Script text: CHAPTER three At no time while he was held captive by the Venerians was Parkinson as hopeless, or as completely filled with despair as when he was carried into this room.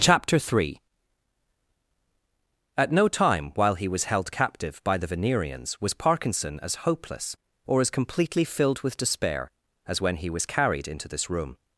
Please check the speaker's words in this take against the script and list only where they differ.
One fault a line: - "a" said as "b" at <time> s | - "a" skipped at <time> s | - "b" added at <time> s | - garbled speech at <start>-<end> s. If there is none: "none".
none